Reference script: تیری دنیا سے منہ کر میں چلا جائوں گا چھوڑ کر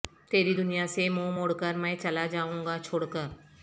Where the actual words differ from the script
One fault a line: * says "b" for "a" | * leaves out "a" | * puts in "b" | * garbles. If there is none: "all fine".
* puts in "موڑ"